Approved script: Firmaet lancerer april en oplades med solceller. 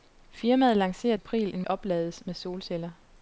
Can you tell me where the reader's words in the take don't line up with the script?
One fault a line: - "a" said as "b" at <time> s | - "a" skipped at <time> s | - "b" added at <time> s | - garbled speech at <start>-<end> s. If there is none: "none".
none